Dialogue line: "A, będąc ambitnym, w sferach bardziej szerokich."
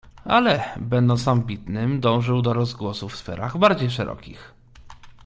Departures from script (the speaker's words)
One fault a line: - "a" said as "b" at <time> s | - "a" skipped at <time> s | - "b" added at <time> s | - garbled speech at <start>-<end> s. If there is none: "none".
- "A" said as "Ale" at 0.2 s
- "dążył do rozgłosu" added at 2.0 s